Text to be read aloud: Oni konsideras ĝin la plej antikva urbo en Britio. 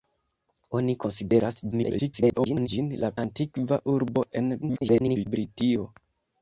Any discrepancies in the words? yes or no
yes